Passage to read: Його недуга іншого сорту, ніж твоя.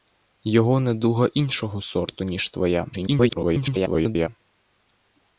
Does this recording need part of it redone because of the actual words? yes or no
yes